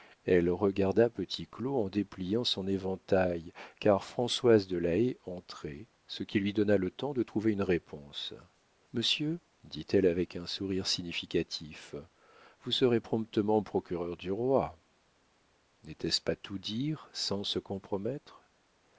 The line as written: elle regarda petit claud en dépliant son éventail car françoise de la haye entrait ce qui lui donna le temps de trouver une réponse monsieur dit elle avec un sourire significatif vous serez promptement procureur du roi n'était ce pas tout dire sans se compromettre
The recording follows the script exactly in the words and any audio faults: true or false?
true